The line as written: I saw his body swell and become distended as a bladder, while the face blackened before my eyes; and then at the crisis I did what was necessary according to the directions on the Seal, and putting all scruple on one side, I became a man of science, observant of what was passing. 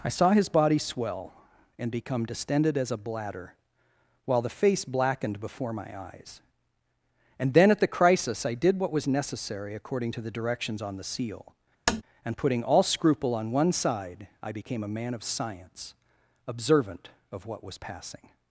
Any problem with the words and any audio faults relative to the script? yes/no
yes